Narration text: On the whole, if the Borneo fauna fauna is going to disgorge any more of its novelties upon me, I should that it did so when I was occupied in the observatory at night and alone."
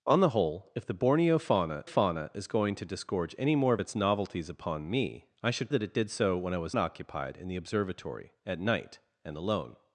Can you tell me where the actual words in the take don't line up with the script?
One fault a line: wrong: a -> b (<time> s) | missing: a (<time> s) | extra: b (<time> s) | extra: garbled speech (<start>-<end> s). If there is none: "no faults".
no faults